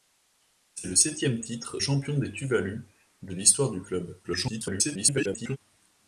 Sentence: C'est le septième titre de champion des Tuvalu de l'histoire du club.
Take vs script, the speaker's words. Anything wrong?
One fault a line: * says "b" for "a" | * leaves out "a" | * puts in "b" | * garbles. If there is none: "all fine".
* leaves out "de"
* garbles